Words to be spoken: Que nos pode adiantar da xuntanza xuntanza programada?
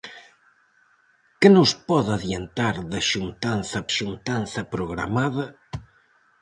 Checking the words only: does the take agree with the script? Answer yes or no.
yes